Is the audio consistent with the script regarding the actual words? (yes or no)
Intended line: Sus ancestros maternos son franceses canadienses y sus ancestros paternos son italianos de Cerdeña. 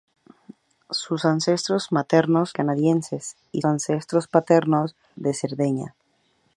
no